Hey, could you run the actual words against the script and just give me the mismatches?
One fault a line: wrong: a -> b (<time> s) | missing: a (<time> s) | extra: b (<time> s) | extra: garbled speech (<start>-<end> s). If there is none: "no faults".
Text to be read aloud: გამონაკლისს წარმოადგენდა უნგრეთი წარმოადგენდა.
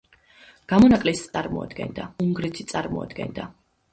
no faults